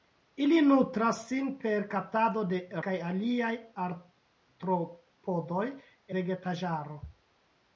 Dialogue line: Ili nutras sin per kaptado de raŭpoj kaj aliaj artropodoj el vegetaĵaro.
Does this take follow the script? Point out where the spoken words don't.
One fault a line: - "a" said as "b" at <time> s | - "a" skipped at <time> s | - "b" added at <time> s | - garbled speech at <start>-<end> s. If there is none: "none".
- "raŭpoj" skipped at 2.6 s
- "el" skipped at 5.7 s